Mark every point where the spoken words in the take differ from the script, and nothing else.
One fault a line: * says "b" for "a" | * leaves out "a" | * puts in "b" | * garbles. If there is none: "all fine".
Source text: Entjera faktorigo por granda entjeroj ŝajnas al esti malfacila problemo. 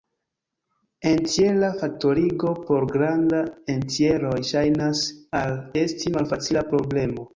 all fine